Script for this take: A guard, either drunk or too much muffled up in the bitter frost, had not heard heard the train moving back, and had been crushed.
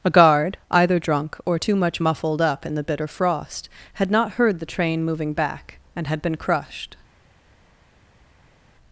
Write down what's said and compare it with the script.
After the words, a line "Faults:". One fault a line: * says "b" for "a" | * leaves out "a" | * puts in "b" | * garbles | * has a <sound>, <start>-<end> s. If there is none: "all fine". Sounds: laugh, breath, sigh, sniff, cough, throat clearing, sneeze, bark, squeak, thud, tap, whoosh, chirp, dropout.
A guard, either drunk or too much muffled up in the bitter frost, had not heard the train moving back, and had been crushed.
Faults:
* leaves out "heard"